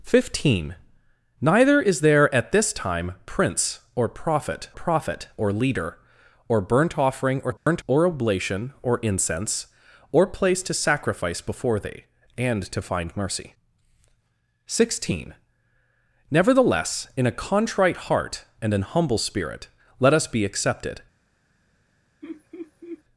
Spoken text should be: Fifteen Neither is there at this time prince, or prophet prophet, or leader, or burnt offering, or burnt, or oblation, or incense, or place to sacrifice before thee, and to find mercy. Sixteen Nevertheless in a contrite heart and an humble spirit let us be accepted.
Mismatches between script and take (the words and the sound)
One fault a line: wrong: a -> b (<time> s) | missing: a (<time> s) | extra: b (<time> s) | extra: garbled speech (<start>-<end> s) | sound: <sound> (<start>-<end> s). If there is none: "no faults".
sound: dropout (7.6-7.7 s)
sound: laugh (22.2-23.0 s)